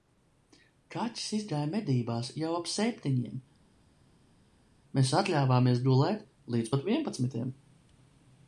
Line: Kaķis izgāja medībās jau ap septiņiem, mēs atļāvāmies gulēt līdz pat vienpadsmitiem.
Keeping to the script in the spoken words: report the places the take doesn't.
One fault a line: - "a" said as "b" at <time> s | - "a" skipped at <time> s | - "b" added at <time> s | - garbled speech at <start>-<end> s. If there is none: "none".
none